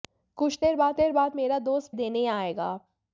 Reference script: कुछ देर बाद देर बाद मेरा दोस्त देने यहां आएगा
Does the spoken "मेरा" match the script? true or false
true